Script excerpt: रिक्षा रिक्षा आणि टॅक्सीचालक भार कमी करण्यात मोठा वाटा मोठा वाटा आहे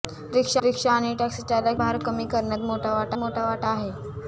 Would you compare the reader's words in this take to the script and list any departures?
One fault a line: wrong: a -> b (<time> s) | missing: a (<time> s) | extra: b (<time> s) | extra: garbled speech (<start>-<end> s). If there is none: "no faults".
no faults